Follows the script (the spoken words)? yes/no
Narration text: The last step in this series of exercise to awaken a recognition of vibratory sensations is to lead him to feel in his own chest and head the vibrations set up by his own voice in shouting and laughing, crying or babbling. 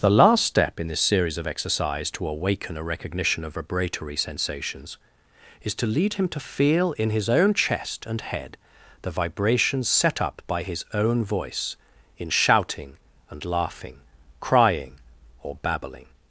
yes